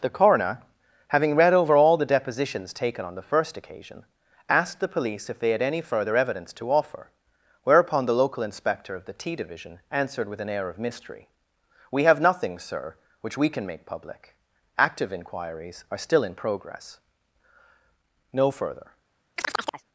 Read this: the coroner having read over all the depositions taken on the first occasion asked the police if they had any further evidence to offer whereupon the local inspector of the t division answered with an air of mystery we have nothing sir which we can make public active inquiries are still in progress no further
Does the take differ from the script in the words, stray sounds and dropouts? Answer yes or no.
yes